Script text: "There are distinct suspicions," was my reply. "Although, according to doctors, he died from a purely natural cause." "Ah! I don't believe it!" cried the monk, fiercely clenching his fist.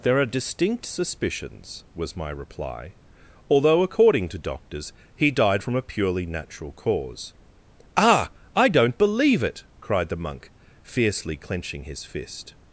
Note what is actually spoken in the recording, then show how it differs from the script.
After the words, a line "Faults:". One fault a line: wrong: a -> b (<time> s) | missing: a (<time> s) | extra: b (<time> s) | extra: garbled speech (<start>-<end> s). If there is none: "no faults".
"There are distinct suspicions," was my reply. "Although, according to doctors, he died from a purely natural cause." "Ah! I don't believe it!" cried the monk, fiercely clenching his fist.
Faults:
no faults